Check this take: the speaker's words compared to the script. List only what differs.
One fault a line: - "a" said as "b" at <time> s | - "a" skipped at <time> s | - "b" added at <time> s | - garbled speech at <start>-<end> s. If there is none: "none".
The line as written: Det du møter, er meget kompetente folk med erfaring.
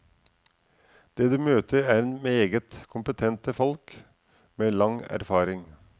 - "lang" added at 4.7 s